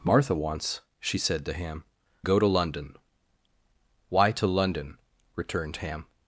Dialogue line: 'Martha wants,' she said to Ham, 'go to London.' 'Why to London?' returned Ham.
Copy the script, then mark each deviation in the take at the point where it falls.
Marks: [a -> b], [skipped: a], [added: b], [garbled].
'Martha wants,' she said to Ham, 'go to London.' 'Why to London?' returned Ham.